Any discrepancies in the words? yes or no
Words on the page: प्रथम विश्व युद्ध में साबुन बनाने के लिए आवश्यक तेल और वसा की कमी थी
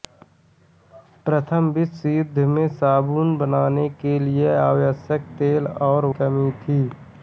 yes